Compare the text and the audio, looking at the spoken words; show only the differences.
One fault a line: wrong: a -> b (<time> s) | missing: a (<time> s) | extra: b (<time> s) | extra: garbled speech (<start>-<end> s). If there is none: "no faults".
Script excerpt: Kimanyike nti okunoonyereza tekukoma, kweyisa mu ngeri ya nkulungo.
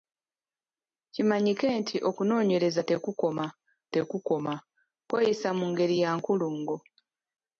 extra: tekukoma (3.9 s)